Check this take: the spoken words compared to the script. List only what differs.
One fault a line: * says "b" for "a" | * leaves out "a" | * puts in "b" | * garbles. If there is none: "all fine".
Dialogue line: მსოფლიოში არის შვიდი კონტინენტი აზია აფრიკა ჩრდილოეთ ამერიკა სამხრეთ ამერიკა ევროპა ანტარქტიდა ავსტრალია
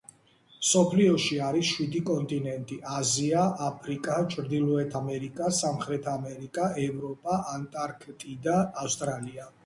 all fine